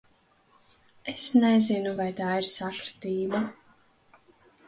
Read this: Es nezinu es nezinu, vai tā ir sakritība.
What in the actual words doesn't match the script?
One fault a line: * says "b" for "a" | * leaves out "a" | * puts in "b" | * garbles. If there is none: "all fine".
* leaves out "es nezinu"